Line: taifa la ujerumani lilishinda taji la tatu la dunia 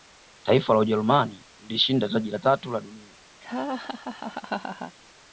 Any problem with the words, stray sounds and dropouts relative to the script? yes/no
yes